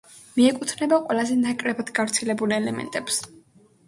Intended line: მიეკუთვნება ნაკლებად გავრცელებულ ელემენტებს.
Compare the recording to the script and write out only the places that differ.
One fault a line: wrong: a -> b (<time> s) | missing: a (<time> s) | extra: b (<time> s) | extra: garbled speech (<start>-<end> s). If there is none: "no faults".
extra: ყველაზე (1.1 s)